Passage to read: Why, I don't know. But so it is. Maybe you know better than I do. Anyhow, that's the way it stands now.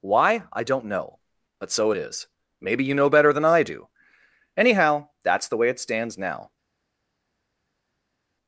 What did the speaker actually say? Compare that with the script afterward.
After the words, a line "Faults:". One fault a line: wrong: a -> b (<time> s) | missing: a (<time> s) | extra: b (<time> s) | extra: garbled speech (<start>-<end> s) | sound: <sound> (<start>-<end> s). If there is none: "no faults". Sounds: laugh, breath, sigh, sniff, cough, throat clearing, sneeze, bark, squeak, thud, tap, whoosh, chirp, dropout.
Why, I don't know. But so it is. Maybe you know better than I do. Anyhow, that's the way it stands now.
Faults:
no faults